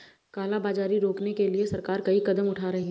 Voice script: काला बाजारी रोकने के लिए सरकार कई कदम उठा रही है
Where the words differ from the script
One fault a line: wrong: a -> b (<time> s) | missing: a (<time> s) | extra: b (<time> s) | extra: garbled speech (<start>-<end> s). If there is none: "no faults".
no faults